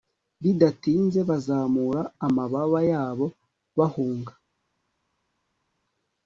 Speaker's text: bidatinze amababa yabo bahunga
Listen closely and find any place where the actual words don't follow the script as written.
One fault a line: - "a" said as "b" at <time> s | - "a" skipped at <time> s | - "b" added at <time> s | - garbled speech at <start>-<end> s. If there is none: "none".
- "bazamura" added at 1.3 s